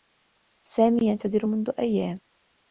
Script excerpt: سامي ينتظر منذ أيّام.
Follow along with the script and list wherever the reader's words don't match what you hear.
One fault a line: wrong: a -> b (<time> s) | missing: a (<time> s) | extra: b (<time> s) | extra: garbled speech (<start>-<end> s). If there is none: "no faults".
no faults